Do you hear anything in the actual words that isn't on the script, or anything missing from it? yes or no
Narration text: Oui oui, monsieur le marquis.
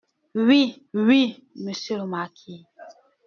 no